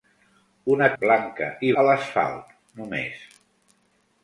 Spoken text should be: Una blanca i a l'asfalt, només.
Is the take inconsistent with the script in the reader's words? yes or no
no